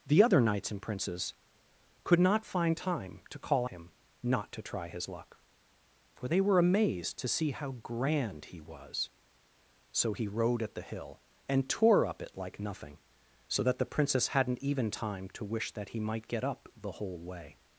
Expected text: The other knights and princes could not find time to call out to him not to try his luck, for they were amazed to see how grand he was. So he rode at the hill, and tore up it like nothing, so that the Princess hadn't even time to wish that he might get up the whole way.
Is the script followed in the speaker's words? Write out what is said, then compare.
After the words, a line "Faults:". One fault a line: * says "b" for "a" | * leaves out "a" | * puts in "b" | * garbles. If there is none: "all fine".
The other knights and princes could not find time to call him not to try his luck, for they were amazed to see how grand he was. So he rode at the hill, and tore up it like nothing, so that the Princess hadn't even time to wish that he might get up the whole way.
Faults:
* leaves out "out to"